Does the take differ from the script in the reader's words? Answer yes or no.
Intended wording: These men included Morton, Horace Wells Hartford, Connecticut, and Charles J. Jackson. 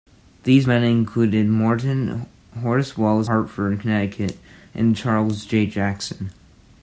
no